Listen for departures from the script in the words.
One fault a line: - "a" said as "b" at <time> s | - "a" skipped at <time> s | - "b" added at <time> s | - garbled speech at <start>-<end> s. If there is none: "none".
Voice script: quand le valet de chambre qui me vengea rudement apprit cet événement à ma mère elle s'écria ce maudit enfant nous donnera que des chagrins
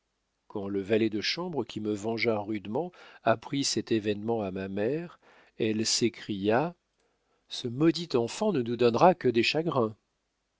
- "ne" added at 8.5 s